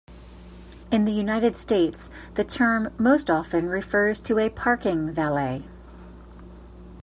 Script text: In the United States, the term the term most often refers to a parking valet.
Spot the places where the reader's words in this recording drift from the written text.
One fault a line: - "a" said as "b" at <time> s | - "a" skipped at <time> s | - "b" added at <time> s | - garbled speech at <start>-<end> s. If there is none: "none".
- "the term" skipped at 2.9 s